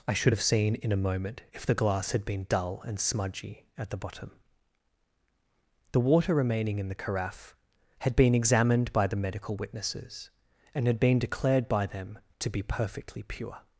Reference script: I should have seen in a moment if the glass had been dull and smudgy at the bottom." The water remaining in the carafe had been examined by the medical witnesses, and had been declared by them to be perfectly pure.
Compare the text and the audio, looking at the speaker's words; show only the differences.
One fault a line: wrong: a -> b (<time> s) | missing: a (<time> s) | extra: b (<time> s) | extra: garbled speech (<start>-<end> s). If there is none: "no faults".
no faults